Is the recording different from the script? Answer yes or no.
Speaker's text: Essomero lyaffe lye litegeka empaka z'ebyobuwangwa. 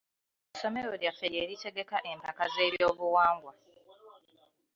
no